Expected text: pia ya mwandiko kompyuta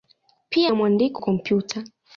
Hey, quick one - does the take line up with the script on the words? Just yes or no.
yes